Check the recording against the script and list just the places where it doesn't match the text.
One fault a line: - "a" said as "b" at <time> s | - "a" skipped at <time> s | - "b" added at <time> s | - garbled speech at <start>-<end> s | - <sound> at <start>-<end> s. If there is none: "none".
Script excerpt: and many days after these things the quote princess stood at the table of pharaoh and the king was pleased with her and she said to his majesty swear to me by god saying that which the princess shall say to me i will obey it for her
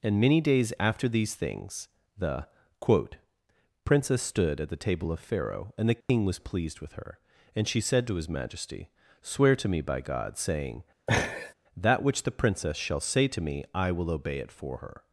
- dropout at 6.0-6.1 s
- laugh at 11.1-11.5 s